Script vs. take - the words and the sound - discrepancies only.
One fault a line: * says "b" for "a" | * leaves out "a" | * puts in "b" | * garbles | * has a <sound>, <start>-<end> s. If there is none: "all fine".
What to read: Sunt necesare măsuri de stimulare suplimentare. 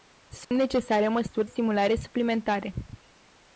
* has a dropout, 0.4-0.5 s
* leaves out "de"